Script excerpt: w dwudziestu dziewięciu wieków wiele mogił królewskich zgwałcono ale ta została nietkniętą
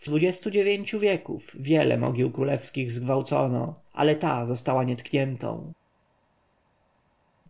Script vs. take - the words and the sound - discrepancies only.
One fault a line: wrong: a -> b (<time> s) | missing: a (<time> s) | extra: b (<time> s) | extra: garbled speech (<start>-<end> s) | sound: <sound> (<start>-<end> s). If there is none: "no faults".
no faults